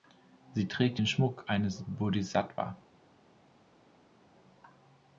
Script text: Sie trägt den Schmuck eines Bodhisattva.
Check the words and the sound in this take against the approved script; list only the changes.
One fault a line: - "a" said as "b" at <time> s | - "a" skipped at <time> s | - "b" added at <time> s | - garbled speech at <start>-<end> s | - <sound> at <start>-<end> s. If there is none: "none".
none